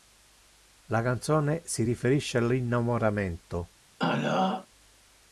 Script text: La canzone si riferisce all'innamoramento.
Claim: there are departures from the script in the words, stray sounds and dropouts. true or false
true